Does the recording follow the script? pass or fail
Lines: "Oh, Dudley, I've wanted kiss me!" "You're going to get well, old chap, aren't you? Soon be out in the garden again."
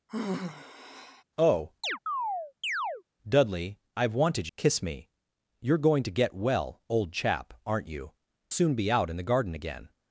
pass